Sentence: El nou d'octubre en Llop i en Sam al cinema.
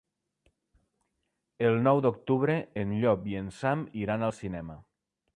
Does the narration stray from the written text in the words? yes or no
yes